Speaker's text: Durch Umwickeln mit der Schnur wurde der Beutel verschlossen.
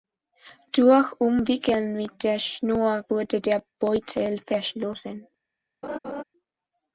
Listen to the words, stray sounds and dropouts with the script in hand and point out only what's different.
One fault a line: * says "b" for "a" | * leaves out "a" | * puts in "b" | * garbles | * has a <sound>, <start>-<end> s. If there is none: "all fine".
* has a laugh, 5.8-6.2 s